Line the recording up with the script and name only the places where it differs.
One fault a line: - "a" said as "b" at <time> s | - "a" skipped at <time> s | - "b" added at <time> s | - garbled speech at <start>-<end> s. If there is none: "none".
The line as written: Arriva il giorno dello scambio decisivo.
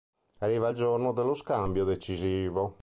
none